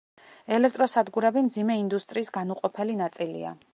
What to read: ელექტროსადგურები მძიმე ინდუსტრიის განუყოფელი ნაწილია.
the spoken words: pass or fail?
pass